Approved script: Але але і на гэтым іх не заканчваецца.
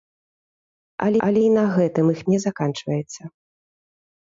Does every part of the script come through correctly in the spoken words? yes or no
yes